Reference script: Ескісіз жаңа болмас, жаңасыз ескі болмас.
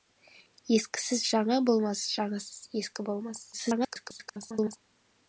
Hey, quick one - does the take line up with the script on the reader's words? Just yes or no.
no